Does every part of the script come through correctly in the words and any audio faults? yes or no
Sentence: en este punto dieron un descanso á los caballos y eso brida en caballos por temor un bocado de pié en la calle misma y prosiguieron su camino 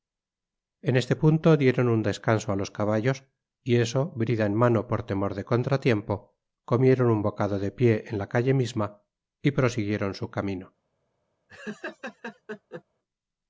no